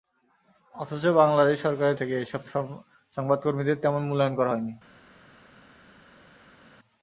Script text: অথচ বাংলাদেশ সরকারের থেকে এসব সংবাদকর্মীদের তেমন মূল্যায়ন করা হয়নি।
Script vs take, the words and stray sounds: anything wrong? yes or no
no